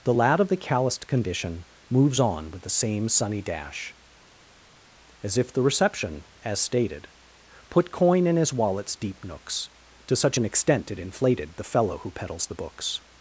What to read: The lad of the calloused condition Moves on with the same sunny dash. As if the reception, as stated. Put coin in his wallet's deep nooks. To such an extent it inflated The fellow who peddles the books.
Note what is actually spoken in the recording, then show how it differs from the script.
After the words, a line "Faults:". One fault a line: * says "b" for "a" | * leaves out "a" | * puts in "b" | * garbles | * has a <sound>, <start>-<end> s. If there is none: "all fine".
The lad of the calloused condition Moves on with the same sunny dash. As if the reception, as stated. Put coin in his wallet's deep nooks. To such an extent it inflated The fellow who peddles the books.
Faults:
all fine